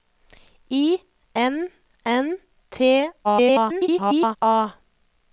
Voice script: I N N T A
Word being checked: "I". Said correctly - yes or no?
yes